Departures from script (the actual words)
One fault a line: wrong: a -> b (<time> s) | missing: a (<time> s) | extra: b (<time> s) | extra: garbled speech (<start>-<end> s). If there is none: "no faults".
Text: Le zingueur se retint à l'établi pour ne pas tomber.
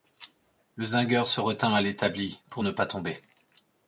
no faults